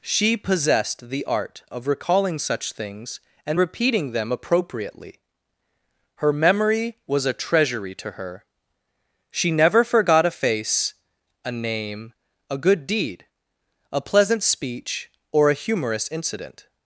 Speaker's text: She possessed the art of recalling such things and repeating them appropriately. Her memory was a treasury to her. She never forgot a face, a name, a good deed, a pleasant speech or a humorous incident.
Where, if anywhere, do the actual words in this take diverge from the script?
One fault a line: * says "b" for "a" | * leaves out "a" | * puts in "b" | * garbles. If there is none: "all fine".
all fine